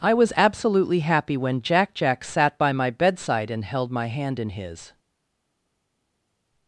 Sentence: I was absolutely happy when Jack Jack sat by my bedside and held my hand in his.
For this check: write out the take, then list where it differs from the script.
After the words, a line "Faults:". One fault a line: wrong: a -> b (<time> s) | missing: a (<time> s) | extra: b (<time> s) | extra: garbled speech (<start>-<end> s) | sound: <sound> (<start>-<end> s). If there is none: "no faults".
I was absolutely happy when Jack Jack sat by my bedside and held my hand in his.
Faults:
no faults